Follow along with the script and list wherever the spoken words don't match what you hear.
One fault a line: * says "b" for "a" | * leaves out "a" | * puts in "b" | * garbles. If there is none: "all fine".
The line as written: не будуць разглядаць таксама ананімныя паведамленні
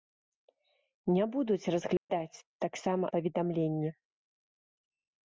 * leaves out "ананімныя"